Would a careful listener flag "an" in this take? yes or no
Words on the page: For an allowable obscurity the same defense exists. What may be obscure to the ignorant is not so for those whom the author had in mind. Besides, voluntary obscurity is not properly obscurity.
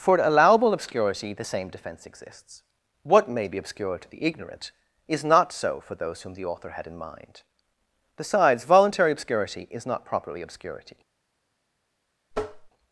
yes